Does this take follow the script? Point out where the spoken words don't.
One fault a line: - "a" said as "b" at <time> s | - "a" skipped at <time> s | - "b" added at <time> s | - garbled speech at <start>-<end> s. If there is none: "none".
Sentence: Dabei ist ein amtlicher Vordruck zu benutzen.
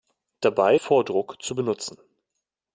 - "ist ein amtlicher" skipped at 0.8 s